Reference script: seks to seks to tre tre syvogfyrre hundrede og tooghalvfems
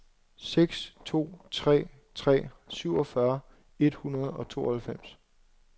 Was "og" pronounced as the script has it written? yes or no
yes